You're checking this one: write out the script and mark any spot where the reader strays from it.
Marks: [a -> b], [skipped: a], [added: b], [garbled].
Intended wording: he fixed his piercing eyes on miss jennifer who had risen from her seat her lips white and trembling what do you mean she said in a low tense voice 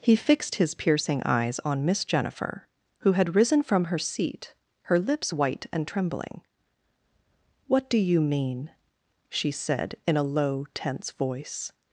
he fixed his piercing eyes on miss jennifer who had risen from her seat her lips white and trembling what do you mean she said in a low tense voice